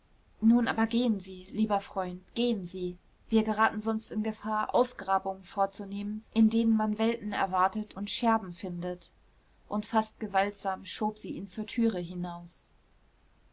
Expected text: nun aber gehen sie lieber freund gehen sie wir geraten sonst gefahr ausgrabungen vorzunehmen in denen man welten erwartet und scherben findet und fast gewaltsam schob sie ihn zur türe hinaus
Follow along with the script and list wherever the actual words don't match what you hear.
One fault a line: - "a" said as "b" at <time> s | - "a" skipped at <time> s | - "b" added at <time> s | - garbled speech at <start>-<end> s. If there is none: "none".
- "in" added at 4.1 s